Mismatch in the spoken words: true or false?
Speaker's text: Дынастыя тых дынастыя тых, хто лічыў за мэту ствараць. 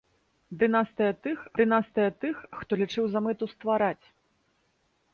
false